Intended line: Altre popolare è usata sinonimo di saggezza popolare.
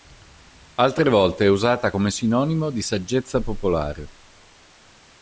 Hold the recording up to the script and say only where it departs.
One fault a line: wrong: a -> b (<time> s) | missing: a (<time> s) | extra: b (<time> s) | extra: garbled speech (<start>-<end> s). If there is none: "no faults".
wrong: popolare -> volte (1.1 s)
extra: come (1.9 s)